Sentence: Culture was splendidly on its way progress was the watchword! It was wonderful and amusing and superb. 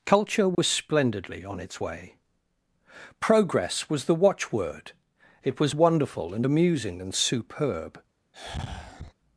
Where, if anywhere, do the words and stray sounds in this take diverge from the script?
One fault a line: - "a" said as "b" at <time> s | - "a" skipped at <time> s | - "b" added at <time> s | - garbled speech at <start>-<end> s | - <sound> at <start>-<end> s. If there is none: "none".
- dropout at 0.5-0.6 s
- sigh at 8.3-9.1 s